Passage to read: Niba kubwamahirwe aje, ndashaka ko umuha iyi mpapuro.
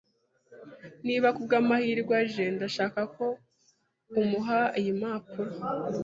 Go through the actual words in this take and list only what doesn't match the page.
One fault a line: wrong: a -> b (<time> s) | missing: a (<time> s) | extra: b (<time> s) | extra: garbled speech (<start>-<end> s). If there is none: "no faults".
no faults